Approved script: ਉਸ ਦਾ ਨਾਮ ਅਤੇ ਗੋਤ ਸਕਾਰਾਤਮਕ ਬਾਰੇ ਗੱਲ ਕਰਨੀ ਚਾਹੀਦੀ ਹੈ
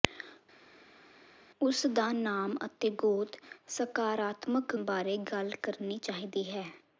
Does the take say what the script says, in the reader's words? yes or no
yes